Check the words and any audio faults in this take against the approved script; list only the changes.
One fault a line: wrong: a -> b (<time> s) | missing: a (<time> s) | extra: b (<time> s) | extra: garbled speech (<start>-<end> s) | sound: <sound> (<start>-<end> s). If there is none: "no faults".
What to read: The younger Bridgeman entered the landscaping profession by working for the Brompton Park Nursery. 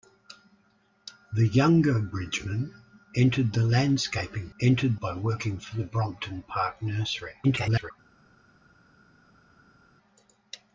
wrong: profession -> entered (4.6 s)
extra: garbled speech (7.4-7.9 s)